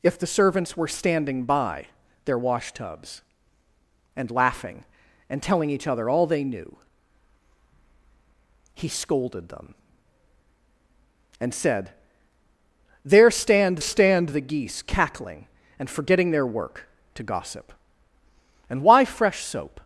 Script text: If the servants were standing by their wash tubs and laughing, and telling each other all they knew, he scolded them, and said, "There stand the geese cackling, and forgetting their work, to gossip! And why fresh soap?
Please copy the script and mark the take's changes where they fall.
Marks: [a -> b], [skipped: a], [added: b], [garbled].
If the servants were standing by their wash tubs and laughing, and telling each other all they knew, he scolded them, and said, "There stand [added: stand] the geese cackling, and forgetting their work, to gossip! And why fresh soap?